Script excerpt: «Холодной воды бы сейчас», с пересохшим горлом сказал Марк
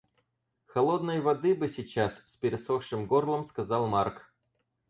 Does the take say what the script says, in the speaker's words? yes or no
yes